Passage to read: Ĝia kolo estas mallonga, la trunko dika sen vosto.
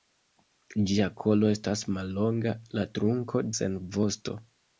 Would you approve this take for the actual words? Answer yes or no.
no